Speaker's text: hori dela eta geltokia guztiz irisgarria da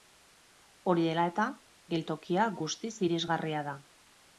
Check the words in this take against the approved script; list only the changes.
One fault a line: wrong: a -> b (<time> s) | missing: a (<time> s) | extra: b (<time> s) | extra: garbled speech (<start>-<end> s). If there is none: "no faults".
no faults